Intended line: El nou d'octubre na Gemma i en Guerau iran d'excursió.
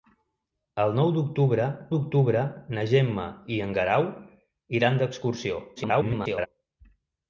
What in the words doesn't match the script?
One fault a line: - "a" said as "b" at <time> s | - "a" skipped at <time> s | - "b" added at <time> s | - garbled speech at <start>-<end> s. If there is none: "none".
- "d'octubre" added at 1.9 s
- garbled speech at 5.8-6.5 s